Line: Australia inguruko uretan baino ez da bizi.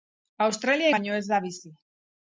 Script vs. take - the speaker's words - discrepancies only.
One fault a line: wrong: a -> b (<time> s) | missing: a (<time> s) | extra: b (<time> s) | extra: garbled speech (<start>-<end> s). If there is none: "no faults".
missing: inguruko uretan (0.9 s)